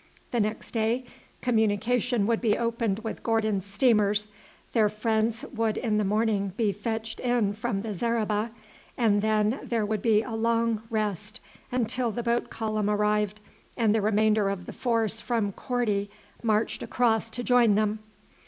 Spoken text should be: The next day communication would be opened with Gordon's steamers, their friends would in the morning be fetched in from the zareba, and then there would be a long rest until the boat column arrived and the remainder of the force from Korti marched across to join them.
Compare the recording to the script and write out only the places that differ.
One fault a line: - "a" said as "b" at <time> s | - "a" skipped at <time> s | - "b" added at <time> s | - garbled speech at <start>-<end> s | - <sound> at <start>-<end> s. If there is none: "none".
none